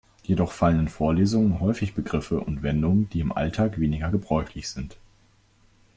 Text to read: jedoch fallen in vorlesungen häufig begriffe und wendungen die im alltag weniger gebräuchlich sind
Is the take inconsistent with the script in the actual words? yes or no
no